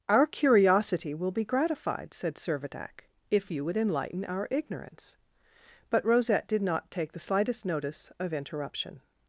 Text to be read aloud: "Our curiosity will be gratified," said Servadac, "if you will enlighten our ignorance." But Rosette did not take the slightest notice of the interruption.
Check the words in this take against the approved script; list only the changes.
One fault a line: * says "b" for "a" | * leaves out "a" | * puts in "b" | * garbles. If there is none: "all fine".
* says "would" for "will"
* leaves out "the"